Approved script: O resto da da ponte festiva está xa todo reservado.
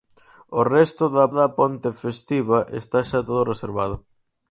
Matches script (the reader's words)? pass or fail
pass